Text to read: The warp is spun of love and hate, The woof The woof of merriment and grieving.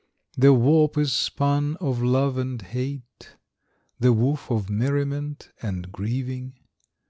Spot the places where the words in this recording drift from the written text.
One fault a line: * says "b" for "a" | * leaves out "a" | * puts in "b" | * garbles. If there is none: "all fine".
* leaves out "The woof"